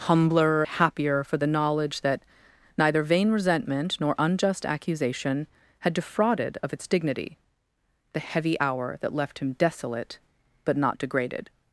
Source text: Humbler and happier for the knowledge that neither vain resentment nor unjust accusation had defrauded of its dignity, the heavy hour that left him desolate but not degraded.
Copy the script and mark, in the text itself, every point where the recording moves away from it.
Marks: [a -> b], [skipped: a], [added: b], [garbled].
Humbler [skipped: and] happier for the knowledge that neither vain resentment nor unjust accusation had defrauded of its dignity, the heavy hour that left him desolate but not degraded.